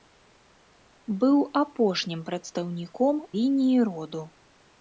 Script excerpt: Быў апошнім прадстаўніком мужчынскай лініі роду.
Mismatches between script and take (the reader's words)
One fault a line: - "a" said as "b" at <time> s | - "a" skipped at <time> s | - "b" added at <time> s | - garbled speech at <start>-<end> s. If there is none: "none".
- "мужчынскай" skipped at 3.1 s